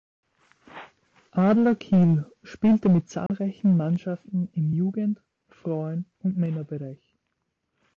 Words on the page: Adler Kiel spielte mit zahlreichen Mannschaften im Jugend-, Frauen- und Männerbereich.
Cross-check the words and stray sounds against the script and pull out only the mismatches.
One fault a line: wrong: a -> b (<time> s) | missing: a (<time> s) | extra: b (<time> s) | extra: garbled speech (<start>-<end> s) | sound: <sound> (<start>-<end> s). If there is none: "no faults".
sound: dropout (3.3-3.3 s)